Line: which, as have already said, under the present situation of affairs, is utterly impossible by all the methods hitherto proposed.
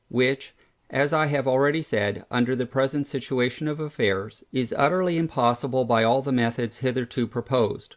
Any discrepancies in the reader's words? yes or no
yes